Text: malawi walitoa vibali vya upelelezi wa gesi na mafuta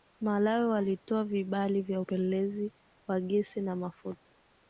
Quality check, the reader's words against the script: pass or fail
pass